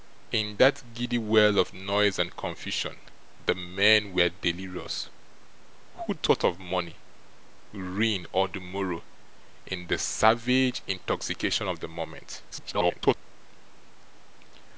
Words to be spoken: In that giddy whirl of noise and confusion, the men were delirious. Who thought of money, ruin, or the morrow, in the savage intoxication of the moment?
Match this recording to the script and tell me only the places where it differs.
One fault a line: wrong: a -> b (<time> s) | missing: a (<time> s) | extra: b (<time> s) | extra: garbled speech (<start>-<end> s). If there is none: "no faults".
extra: garbled speech (12.5-13.2 s)